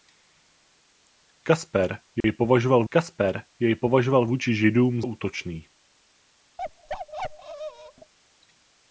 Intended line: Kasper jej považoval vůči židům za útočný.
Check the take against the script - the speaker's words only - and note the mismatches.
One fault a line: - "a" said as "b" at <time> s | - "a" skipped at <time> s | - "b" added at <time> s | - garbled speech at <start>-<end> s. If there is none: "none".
- "kasper jej považoval" added at 2.9 s
- "za" skipped at 5.0 s